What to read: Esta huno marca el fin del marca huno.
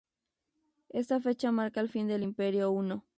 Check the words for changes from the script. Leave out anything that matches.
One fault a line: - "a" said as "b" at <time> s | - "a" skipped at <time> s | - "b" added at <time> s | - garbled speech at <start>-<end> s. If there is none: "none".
- "huno" said as "fecha" at 1.2 s
- "marca" said as "imperio" at 2.2 s